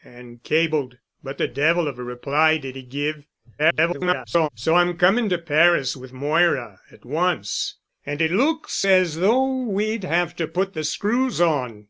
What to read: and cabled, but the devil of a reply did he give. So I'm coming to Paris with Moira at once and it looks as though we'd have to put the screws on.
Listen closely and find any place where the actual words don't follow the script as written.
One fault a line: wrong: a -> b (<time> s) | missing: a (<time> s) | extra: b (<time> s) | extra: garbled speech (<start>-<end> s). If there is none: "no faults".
extra: garbled speech (3.6-4.5 s)